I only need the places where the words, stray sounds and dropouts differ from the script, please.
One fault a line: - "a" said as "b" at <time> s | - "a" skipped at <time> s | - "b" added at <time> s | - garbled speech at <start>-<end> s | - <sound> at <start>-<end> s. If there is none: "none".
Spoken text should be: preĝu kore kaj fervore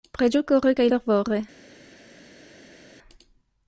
none